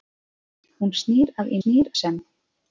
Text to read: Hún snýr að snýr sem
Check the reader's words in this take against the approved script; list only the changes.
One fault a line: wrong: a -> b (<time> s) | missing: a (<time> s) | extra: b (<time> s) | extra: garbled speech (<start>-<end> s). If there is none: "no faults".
no faults